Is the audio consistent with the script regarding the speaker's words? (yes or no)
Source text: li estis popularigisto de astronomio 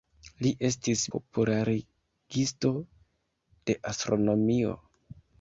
yes